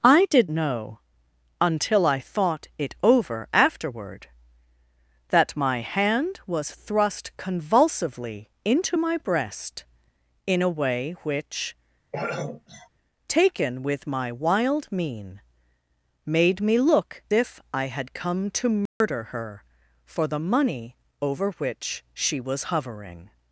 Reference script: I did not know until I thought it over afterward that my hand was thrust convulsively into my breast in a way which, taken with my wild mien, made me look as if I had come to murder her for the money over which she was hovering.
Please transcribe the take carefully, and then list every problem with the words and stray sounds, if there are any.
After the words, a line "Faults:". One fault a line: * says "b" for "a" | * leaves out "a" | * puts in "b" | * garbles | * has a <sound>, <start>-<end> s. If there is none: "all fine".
I did know until I thought it over afterward that my hand was thrust convulsively into my breast in a way which, taken with my wild mien, made me look if I had come to murder her for the money over which she was hovering.
Faults:
* leaves out "not"
* has a throat clearing, 12.1-12.9 s
* leaves out "as"
* has a dropout, 18.9-19.0 s